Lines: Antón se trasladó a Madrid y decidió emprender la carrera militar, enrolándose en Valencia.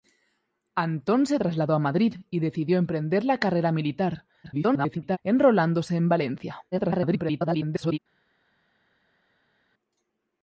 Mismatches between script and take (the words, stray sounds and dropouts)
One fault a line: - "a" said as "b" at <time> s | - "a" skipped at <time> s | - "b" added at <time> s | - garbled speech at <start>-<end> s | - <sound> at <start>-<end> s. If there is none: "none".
- garbled speech at 4.4-5.2 s
- garbled speech at 6.7-8.0 s